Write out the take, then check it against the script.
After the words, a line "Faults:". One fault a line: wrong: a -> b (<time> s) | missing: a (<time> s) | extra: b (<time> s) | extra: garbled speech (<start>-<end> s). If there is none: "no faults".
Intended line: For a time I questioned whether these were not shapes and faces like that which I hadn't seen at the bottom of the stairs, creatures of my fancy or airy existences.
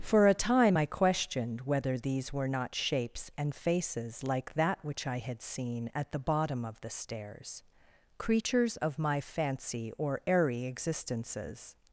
For a time I questioned whether these were not shapes and faces like that which I had seen at the bottom of the stairs, creatures of my fancy or airy existences.
Faults:
wrong: hadn't -> had (5.2 s)